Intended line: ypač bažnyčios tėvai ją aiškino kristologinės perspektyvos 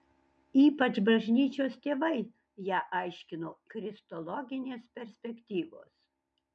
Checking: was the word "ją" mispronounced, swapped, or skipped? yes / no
no